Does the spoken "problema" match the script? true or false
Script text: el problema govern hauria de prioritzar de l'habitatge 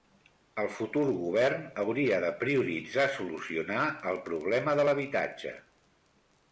false